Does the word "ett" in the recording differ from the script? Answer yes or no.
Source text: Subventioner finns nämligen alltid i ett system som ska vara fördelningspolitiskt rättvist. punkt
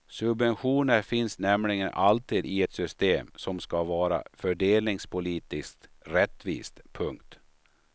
no